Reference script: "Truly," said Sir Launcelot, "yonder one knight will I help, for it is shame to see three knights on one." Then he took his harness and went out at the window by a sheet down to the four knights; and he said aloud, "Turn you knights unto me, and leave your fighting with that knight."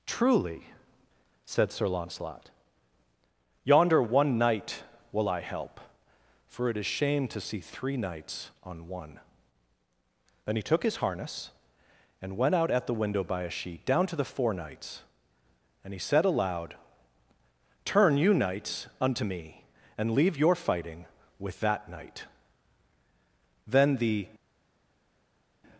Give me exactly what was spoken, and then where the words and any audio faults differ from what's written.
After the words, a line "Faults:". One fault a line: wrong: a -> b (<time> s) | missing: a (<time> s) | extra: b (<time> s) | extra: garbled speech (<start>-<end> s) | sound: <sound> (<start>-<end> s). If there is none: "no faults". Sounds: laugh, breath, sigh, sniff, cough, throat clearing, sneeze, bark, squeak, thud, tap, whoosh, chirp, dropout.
"Truly," said Sir Launcelot, "yonder one knight will I help, for it is shame to see three knights on one." Then he took his harness and went out at the window by a sheet down to the four knights; and he said aloud, "Turn you knights unto me, and leave your fighting with that knight." Then the
Faults:
extra: Then the (23.7 s)